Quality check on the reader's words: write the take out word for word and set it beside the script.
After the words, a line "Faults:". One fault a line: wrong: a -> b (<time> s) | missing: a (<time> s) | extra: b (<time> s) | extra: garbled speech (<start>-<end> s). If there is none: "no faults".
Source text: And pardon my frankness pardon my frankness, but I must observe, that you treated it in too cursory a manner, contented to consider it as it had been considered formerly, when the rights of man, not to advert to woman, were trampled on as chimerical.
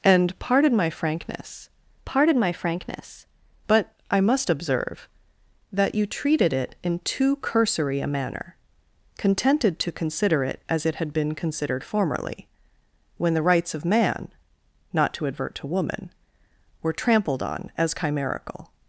And pardon my frankness pardon my frankness, but I must observe, that you treated it in too cursory a manner, contented to consider it as it had been considered formerly, when the rights of man, not to advert to woman, were trampled on as chimerical.
Faults:
no faults